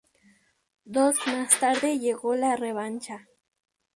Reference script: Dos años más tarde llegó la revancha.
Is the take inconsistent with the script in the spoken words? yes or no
yes